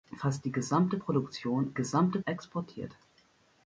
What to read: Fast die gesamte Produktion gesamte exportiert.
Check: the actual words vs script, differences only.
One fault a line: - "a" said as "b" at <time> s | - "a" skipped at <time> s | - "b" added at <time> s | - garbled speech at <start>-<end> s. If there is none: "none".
none